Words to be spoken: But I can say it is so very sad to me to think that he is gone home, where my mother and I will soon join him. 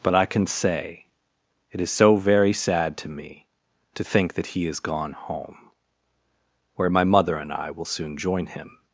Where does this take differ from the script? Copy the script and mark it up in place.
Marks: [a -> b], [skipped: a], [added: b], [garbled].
But I can say it is so very sad to me to think that he is gone home, where my mother and I will soon join him.